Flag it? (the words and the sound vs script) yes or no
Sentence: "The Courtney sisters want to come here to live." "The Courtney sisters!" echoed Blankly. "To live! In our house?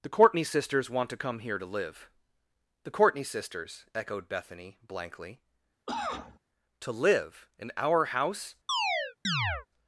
yes